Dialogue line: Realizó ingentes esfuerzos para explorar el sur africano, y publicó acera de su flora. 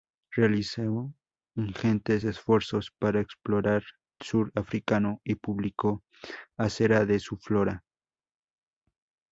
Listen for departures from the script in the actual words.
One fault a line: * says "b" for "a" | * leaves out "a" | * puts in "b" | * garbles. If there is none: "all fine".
* leaves out "el"